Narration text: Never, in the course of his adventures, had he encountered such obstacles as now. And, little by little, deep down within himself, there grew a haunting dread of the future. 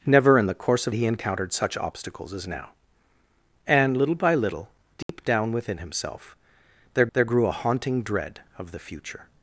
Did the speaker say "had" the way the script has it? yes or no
no